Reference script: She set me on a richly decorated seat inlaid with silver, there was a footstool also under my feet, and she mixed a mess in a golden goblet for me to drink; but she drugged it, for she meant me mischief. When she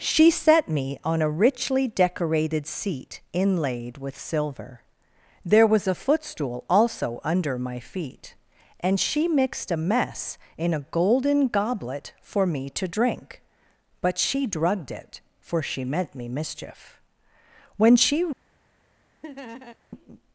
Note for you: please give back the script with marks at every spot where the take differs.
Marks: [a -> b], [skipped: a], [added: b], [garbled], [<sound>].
She set me on a richly decorated seat inlaid with silver, there was a footstool also under my feet, and she mixed a mess in a golden goblet for me to drink; but she drugged it, for she meant me mischief. When she [laugh]